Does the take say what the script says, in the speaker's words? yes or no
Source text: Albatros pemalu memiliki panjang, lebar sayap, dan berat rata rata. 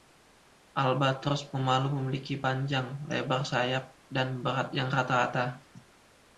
no